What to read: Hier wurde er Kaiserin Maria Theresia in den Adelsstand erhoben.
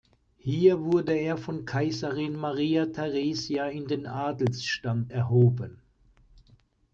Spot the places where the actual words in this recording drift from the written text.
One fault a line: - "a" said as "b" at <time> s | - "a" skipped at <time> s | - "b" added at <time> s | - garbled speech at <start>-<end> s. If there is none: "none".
- "von" added at 1.4 s